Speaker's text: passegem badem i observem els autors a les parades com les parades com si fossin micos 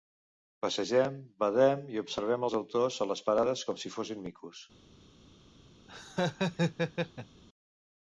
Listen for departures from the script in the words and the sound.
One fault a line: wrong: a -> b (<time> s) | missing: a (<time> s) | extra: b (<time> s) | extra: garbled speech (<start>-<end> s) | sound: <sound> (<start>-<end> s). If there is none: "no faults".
missing: les parades com (3.8 s)
sound: laugh (5.9-7.4 s)